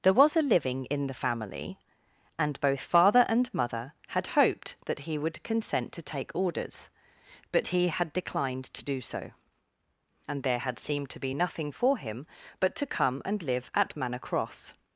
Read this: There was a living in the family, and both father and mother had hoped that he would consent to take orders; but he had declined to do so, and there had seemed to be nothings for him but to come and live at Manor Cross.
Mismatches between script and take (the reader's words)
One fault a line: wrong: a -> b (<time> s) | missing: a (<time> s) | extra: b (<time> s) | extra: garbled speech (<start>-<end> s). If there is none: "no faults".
wrong: nothings -> nothing (11.3 s)